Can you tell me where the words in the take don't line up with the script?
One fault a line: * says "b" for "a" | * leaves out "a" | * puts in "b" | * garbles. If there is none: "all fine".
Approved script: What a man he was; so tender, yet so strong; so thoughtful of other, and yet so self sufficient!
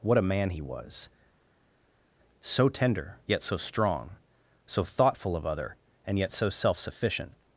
all fine